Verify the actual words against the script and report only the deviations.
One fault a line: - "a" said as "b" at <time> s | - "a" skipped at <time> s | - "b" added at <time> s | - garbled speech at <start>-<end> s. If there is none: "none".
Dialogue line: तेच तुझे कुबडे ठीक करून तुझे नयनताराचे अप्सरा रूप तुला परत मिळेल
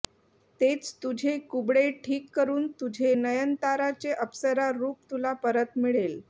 none